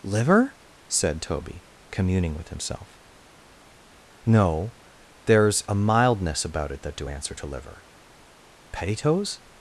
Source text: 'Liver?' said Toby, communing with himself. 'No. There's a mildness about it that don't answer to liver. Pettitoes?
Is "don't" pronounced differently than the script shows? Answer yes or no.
yes